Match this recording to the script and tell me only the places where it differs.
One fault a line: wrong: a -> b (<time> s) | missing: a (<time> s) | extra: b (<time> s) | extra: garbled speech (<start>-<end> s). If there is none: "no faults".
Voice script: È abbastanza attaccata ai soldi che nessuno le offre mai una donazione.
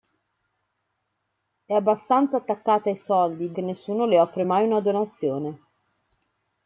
no faults